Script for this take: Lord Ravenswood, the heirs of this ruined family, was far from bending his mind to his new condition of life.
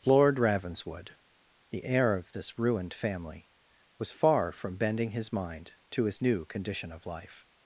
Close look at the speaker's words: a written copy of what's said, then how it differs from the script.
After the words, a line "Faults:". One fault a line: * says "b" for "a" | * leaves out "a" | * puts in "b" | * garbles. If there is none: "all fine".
Lord Ravenswood, the heir of this ruined family, was far from bending his mind to his new condition of life.
Faults:
* says "heir" for "heirs"